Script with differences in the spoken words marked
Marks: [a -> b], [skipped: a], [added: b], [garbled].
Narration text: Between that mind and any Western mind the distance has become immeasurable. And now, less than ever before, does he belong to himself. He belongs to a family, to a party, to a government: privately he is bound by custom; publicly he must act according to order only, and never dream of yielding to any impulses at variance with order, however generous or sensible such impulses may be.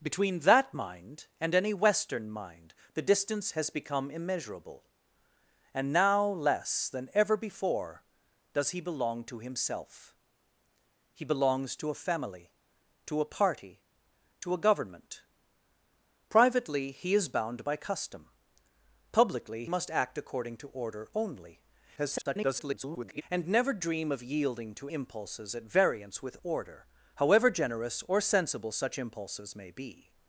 Between that mind and any Western mind the distance has become immeasurable. And now, less than ever before, does he belong to himself. He belongs to a family, to a party, to a government: privately he is bound by custom; publicly [skipped: he] must act according to order only, [garbled] and never dream of yielding to [skipped: any] impulses at variance with order, however generous or sensible such impulses may be.